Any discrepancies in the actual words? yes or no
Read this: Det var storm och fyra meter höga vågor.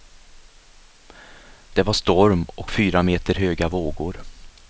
no